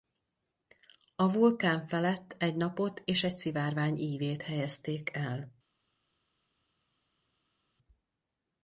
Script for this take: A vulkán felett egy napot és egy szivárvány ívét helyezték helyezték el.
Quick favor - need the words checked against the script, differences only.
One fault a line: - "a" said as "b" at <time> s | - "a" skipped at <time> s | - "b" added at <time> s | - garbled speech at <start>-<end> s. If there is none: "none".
- "helyezték" skipped at 5.2 s